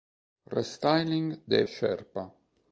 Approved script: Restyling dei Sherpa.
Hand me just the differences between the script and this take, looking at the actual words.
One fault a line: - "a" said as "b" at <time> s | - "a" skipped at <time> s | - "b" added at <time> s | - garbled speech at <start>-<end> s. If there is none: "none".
none